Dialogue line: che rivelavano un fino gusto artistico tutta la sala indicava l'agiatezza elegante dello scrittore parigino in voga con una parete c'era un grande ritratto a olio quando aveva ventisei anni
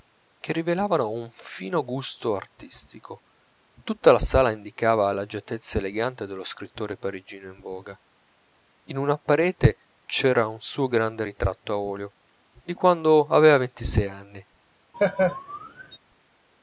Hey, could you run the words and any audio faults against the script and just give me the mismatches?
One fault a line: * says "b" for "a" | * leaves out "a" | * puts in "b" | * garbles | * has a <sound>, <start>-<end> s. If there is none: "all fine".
* says "in" for "con"
* puts in "suo"
* puts in "di"
* has a laugh, 14.9-16.0 s